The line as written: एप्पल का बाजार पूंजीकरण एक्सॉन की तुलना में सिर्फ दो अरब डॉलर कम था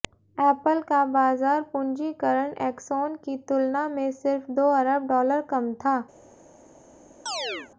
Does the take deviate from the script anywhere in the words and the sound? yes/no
yes